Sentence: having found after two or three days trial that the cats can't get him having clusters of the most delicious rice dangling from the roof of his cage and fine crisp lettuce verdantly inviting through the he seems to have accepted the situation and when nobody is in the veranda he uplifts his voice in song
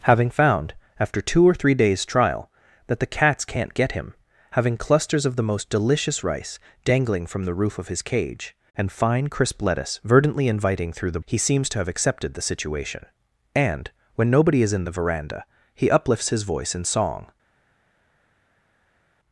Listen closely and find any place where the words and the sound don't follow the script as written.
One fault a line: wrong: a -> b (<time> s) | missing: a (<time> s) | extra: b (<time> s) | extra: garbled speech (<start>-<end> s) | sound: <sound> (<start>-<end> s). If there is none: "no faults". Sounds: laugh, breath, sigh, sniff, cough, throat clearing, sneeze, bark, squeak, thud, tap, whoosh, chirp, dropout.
no faults